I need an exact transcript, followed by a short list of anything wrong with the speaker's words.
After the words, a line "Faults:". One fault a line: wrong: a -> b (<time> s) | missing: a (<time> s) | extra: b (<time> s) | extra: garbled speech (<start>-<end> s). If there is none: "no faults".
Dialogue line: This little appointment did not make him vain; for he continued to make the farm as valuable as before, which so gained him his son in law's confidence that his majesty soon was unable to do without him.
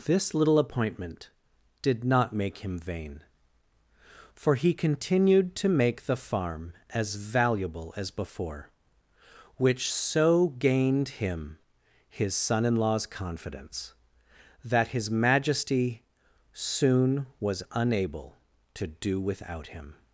This little appointment did not make him vain; for he continued to make the farm as valuable as before, which so gained him his son in law's confidence that his majesty soon was unable to do without him.
Faults:
no faults